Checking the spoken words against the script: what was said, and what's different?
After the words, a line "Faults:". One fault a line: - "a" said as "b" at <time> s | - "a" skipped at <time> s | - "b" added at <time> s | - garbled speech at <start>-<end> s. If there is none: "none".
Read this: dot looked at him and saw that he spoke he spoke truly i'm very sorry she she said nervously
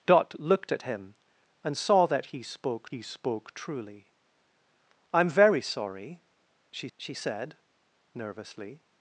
dot looked at him and saw that he spoke he spoke truly i'm very sorry she she said nervously
Faults:
none